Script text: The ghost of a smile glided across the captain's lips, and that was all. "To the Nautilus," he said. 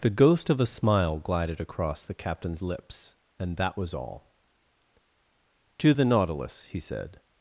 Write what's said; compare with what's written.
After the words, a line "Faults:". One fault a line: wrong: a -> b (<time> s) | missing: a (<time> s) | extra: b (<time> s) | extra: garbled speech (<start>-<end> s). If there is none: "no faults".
The ghost of a smile glided across the captain's lips, and that was all. "To the Nautilus," he said.
Faults:
no faults